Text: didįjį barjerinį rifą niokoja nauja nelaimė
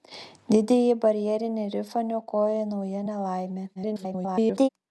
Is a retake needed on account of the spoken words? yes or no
yes